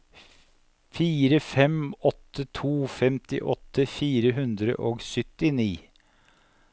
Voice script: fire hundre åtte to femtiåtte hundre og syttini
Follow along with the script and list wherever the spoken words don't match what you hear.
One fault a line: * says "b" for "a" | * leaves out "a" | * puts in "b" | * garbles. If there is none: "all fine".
* says "fem" for "hundre"
* puts in "fire"